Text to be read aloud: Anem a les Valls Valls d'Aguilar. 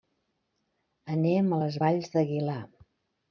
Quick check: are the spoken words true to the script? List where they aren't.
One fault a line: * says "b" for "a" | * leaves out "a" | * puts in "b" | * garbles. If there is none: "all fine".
* leaves out "Valls"